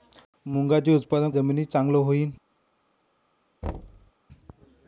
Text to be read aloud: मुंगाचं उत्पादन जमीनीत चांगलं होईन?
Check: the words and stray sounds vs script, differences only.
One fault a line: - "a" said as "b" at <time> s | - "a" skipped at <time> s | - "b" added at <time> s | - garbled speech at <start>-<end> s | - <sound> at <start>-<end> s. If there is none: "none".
- thud at 3.6-4.1 s